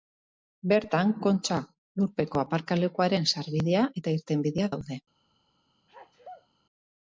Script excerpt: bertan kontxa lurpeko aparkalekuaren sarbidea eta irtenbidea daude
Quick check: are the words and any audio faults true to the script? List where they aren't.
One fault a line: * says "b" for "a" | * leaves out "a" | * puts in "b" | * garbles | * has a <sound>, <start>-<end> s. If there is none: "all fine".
* has a sneeze, 5.9-6.5 s